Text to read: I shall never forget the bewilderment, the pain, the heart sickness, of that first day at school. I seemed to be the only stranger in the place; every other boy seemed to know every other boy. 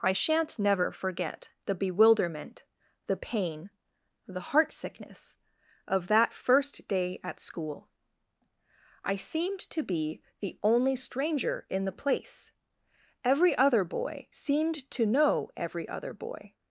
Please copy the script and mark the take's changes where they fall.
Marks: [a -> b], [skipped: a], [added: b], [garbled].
I [shall -> shan't] never forget the bewilderment, the pain, the heart sickness, of that first day at school. I seemed to be the only stranger in the place; every other boy seemed to know every other boy.